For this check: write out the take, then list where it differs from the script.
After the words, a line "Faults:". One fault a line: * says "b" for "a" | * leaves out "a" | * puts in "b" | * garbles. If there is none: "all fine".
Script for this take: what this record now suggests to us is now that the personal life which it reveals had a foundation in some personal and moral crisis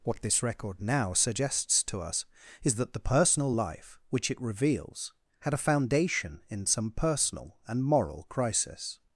what this record now suggests to us is that the personal life which it reveals had a foundation in some personal and moral crisis
Faults:
* leaves out "now"